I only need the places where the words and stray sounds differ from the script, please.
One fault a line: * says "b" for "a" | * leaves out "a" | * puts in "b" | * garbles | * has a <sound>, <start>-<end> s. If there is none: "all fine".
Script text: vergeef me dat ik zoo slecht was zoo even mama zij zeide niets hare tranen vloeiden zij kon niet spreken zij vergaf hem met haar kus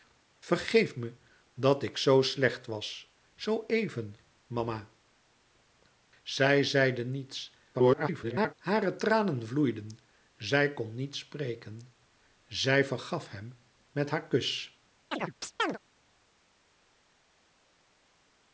* garbles
* has a chirp, 15.1-15.8 s